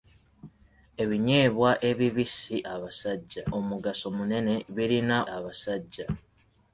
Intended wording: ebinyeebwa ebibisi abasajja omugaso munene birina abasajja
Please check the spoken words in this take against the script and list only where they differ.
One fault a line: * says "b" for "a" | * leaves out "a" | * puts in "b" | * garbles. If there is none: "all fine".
all fine